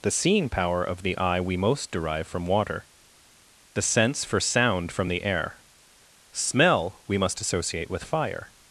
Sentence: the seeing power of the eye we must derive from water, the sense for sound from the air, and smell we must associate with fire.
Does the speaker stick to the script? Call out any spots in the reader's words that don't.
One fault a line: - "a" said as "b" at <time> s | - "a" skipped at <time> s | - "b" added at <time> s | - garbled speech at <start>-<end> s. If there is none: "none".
- "must" said as "most" at 1.6 s
- "and" skipped at 5.6 s